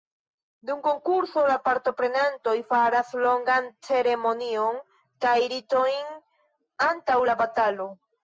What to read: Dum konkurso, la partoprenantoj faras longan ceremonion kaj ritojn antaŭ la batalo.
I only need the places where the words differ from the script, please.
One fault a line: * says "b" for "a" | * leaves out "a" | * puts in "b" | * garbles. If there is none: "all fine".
all fine